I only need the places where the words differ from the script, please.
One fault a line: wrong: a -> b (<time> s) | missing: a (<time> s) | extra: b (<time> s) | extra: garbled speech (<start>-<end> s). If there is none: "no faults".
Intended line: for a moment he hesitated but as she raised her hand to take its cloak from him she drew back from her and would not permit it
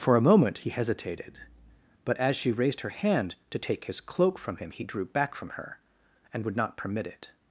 wrong: its -> his (3.8 s)
wrong: she -> he (4.7 s)